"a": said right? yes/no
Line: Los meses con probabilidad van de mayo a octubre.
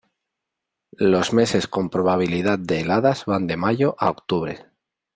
yes